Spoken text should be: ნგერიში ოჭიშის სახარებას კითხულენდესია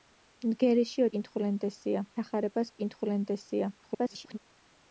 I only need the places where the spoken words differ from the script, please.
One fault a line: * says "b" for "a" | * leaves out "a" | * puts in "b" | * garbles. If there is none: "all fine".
* says "კითხულენდესია" for "ოჭიშის"
* garbles